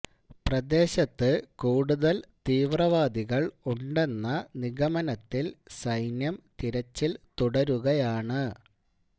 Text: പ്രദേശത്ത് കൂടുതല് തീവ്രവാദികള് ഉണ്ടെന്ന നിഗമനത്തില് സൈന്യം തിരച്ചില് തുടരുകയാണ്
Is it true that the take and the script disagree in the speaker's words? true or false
false